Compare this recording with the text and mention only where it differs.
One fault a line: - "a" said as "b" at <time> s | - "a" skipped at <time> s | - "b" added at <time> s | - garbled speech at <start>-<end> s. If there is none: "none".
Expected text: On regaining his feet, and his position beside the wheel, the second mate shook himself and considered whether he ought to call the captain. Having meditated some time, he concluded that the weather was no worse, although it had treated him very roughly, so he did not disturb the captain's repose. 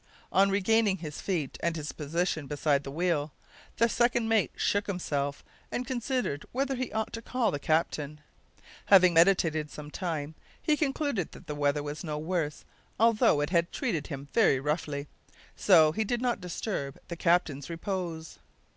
none